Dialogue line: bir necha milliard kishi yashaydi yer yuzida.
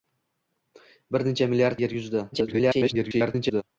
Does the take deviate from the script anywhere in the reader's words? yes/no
yes